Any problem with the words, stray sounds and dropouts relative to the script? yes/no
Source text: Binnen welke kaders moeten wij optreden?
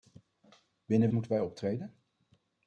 yes